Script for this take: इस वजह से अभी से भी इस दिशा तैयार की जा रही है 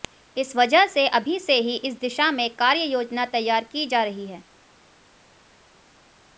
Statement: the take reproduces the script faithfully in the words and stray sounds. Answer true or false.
false